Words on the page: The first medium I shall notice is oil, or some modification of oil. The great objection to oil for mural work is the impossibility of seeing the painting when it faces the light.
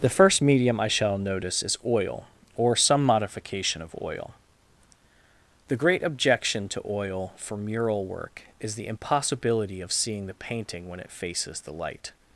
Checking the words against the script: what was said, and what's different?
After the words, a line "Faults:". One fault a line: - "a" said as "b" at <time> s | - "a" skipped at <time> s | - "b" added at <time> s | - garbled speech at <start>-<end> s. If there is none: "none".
The first medium I shall notice is oil, or some modification of oil. The great objection to oil for mural work is the impossibility of seeing the painting when it faces the light.
Faults:
none